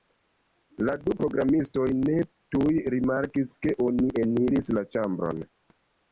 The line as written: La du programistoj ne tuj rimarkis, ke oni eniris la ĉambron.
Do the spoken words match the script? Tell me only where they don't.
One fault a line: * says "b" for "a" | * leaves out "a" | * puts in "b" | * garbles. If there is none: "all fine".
all fine